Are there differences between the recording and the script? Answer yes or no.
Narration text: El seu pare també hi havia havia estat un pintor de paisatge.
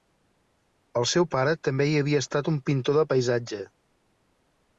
yes